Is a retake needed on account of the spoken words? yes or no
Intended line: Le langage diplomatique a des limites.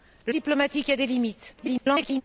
yes